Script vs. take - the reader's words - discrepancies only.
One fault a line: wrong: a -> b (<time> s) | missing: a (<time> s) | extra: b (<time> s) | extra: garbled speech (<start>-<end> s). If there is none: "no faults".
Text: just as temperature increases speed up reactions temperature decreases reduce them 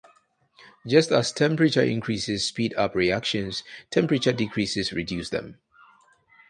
no faults